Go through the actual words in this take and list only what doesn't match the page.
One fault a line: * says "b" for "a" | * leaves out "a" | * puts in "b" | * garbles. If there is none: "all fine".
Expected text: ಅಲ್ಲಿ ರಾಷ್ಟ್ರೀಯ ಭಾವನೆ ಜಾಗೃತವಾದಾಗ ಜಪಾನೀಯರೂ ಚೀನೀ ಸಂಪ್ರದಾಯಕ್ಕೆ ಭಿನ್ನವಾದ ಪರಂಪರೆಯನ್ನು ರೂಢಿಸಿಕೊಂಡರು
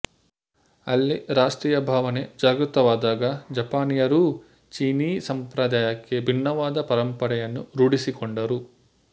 all fine